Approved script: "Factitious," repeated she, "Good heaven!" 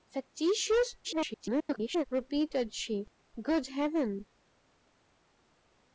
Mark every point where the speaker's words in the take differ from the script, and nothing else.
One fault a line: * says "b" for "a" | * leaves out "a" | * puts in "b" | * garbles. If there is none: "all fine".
* garbles